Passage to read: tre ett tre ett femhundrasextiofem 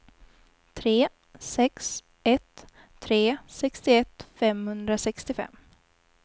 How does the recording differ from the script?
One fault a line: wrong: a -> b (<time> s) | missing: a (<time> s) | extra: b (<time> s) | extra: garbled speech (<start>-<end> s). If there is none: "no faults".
extra: sex (1.4 s)
wrong: ett -> sextioett (3.5 s)